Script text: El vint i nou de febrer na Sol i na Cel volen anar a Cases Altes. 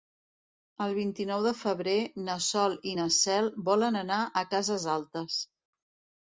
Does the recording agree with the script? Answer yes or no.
yes